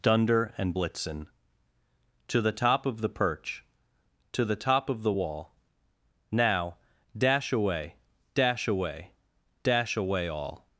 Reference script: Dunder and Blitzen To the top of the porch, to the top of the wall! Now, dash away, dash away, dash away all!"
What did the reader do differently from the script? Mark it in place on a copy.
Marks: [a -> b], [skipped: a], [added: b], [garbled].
Dunder and Blitzen To the top of the [porch, -> perch] to the top of the wall! Now, dash away, dash away, dash away all!"